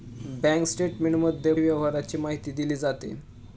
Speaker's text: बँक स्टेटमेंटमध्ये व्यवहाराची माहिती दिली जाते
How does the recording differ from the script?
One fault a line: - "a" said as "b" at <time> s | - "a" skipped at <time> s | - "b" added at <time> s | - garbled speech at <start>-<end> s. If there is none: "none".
none